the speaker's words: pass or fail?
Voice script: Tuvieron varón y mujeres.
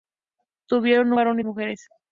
pass